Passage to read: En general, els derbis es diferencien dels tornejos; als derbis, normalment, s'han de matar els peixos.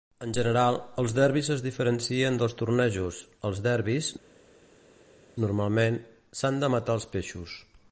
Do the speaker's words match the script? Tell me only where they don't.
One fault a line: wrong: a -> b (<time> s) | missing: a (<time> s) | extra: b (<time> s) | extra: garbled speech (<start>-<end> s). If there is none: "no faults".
no faults